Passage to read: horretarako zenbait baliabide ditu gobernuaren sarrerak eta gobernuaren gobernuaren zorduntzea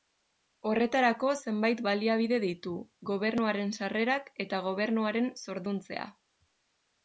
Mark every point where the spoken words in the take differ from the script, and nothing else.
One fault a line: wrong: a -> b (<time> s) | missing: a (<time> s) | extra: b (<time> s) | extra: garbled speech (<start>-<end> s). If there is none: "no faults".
missing: gobernuaren (5.3 s)